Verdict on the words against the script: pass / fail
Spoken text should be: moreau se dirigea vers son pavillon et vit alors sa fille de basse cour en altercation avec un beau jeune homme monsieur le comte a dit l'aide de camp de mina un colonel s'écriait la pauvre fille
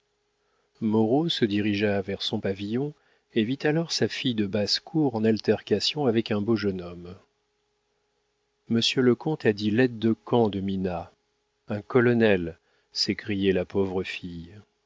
pass